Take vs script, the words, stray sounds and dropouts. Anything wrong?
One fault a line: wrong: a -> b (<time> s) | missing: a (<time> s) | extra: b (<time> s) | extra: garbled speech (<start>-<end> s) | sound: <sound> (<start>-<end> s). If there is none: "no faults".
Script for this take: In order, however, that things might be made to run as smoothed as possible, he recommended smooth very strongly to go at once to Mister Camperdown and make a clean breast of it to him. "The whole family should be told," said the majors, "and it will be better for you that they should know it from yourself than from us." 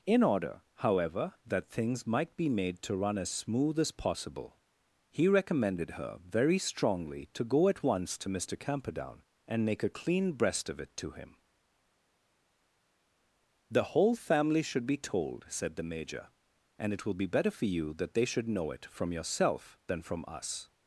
wrong: smoothed -> smooth (3.3 s)
wrong: smooth -> her (5.9 s)
wrong: majors -> major (15.9 s)